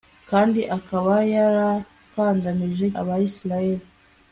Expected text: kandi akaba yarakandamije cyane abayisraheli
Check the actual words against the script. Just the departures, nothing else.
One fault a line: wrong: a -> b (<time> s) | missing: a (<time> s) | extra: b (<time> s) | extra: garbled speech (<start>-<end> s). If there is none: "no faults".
missing: cyane (2.9 s)